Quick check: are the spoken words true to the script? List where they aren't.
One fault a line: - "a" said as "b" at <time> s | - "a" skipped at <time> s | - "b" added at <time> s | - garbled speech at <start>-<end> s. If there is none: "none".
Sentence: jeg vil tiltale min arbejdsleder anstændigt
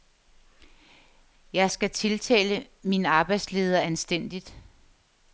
- "vil" said as "skal" at 1.7 s